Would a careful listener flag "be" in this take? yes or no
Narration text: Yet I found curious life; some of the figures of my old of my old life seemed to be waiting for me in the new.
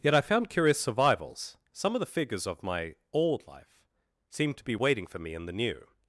no